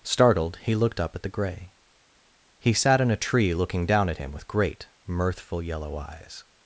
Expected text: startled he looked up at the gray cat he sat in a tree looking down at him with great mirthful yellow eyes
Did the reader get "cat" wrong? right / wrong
wrong